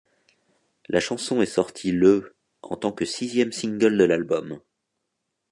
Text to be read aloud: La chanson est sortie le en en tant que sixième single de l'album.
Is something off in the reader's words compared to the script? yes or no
yes